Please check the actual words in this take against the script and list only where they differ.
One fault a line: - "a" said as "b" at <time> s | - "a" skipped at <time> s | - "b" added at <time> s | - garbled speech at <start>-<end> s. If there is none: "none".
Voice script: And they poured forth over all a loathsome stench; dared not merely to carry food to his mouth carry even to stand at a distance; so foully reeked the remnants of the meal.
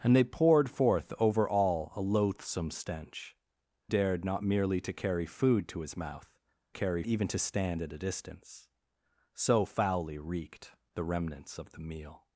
none